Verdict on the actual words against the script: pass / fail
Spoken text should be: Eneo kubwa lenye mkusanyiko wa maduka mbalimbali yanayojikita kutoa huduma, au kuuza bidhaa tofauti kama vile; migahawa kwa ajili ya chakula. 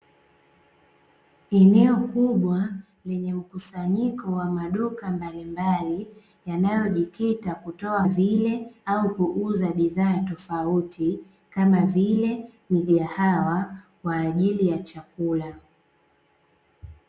fail